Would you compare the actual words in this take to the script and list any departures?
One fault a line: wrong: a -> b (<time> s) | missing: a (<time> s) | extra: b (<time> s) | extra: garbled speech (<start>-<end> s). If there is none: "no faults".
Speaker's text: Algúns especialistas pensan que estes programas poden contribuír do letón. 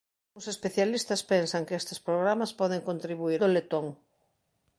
no faults